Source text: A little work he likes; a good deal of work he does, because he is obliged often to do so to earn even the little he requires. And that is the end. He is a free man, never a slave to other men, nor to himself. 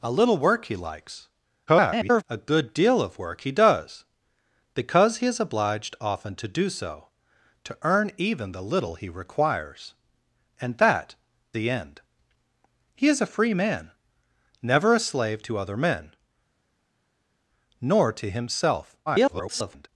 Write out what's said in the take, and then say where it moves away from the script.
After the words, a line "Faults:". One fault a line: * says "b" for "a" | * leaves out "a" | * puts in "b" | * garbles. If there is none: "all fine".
A little work he likes; [garbled] a good deal of work he does, because he is obliged often to do so to earn even the little he requires. And that the end. He is a free man, never a slave to other men, nor to himself. [garbled]
Faults:
* garbles
* leaves out "is"
* garbles